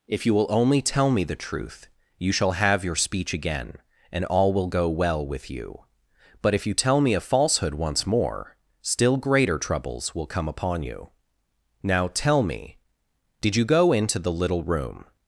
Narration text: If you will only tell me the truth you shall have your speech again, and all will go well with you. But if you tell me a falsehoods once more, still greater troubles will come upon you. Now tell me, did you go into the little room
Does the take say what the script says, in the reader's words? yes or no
no